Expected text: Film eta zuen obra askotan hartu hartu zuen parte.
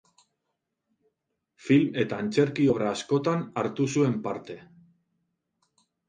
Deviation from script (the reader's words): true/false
true